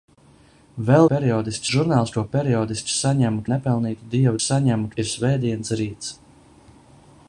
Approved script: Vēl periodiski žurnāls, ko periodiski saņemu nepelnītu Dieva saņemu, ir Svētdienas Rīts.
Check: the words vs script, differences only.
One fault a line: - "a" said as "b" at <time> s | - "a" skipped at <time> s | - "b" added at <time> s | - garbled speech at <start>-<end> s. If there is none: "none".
none